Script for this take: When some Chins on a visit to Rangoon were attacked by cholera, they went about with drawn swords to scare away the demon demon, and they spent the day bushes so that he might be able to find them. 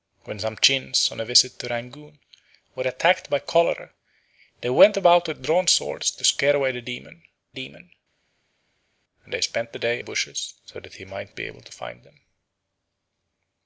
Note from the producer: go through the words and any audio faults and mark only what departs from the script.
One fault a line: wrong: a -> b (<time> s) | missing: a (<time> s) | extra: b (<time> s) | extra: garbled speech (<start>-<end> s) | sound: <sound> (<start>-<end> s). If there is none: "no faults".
no faults